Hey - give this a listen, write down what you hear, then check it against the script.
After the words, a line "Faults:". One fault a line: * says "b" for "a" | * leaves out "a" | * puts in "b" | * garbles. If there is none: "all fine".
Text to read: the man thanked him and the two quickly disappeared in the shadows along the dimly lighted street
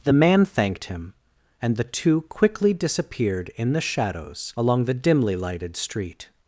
the man thanked him and the two quickly disappeared in the shadows along the dimly lighted street
Faults:
all fine